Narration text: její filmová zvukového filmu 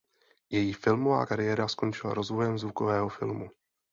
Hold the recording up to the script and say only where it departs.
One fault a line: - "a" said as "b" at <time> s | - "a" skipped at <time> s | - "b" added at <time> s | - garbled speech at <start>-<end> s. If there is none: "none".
- "kariéra skončila rozvojem" added at 1.2 s